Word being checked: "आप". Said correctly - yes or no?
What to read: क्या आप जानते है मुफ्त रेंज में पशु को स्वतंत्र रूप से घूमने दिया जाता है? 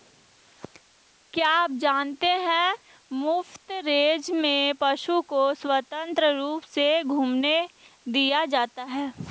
yes